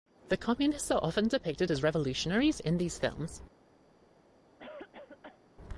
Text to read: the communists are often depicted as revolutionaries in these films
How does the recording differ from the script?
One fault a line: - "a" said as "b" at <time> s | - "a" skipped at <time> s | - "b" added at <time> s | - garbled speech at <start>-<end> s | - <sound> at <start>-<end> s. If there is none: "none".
- cough at 4.6-5.4 s